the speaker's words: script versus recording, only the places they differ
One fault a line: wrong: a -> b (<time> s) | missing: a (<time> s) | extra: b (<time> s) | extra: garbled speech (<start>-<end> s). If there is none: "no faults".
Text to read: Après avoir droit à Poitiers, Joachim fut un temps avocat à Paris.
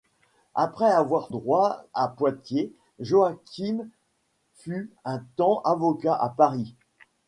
no faults